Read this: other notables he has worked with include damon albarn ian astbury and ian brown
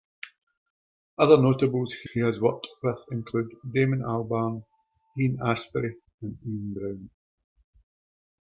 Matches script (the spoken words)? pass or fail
fail